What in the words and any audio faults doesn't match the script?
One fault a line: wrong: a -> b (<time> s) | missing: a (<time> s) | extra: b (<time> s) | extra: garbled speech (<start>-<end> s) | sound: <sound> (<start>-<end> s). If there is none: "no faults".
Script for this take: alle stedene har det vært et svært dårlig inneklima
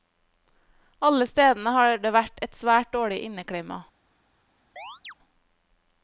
sound: chirp (4.8-5.1 s)